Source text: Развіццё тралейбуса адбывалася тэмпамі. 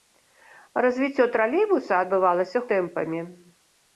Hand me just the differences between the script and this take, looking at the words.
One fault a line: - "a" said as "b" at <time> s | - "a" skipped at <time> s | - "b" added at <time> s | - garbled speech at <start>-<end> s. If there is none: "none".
none